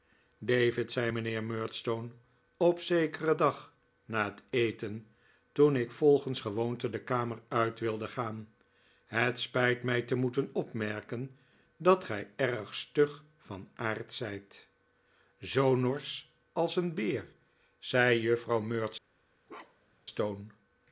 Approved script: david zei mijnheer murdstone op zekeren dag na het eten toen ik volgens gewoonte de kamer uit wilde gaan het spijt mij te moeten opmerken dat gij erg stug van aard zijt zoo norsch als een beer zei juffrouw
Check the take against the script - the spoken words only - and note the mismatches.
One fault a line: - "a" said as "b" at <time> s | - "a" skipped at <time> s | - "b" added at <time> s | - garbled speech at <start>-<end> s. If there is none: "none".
none